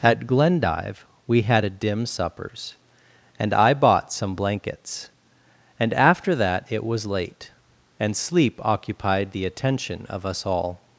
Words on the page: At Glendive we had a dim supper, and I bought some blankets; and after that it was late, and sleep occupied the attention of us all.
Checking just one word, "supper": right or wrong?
wrong